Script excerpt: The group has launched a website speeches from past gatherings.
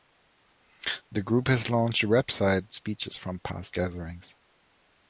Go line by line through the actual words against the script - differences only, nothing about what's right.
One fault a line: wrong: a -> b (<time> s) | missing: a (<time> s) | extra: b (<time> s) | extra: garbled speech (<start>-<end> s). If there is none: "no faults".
no faults